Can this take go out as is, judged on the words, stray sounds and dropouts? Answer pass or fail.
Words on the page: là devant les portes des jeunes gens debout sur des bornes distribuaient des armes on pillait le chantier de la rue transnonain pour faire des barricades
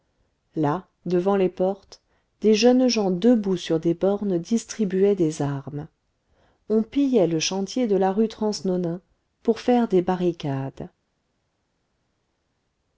pass